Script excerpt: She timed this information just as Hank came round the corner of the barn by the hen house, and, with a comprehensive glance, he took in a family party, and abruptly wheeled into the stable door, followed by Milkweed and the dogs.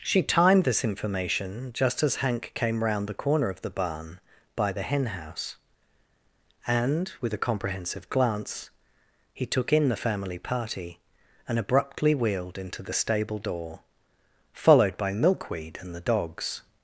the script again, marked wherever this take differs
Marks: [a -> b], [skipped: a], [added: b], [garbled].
She timed this information just as Hank came round the corner of the barn by the hen house, and, with a comprehensive glance, he took in [a -> the] family party, and abruptly wheeled into the stable door, followed by Milkweed and the dogs.